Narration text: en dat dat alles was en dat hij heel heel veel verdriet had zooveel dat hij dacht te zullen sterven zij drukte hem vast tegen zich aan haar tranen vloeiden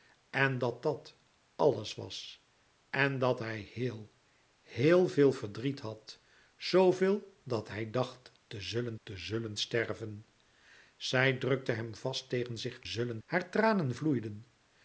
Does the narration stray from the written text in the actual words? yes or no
yes